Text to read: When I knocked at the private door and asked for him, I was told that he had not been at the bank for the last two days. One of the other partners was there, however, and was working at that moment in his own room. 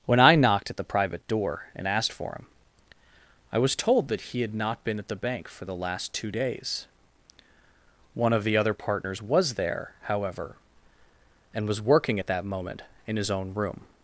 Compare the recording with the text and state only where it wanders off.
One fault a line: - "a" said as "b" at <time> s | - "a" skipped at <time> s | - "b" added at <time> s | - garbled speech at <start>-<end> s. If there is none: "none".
none